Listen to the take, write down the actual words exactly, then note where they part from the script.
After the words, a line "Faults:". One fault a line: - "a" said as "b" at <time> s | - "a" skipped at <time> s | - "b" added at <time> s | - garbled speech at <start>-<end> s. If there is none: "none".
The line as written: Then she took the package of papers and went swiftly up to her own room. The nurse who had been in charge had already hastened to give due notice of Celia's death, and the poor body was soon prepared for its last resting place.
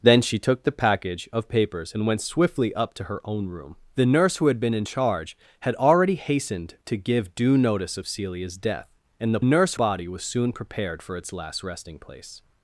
Then she took the package of papers and went swiftly up to her own room. The nurse who had been in charge had already hastened to give due notice of Celia's death, and the nurse body was soon prepared for its last resting place.
Faults:
- "poor" said as "nurse" at 9.4 s